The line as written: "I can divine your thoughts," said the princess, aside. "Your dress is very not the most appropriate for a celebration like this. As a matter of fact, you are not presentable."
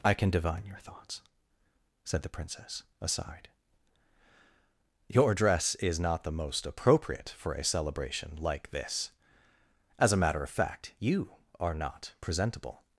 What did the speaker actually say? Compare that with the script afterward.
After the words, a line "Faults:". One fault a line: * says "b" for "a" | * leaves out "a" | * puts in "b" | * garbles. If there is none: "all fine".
"I can divine your thoughts," said the princess, aside. "Your dress is not the most appropriate for a celebration like this. As a matter of fact, you are not presentable."
Faults:
* leaves out "very"